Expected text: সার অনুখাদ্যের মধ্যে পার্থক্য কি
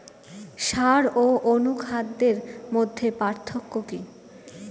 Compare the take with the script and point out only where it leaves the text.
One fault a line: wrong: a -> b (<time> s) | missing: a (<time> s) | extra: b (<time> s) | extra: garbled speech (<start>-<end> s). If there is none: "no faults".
extra: ও (1.2 s)